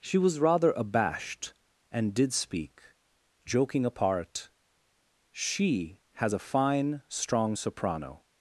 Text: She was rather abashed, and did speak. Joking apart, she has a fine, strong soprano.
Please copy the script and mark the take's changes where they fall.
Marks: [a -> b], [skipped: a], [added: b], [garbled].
She was rather abashed, and did speak. Joking apart, she has a fine, strong soprano.